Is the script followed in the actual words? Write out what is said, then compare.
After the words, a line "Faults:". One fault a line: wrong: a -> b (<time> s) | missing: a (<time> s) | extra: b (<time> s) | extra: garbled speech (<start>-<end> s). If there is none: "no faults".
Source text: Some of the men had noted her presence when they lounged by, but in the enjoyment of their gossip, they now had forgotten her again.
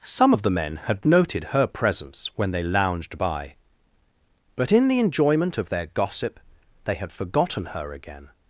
Some of the men had noted her presence when they lounged by, but in the enjoyment of their gossip, they had forgotten her again.
Faults:
missing: now (7.0 s)